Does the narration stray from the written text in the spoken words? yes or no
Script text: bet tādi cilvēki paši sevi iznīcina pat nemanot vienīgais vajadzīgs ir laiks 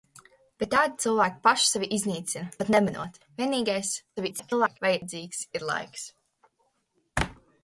yes